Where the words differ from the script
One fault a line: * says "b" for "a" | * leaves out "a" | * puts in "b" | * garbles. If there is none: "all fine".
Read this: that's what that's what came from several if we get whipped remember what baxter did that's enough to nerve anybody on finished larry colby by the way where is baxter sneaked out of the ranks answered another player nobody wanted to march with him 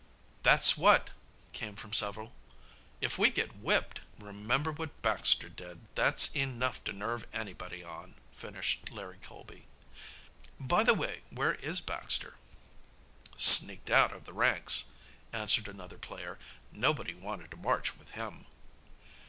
* leaves out "that's what"